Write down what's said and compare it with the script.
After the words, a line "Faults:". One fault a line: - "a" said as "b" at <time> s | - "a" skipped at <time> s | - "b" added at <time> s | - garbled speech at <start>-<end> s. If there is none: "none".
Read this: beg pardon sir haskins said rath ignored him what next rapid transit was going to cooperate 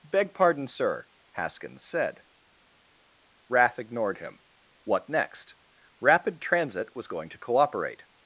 beg pardon sir haskins said rath ignored him what next rapid transit was going to cooperate
Faults:
none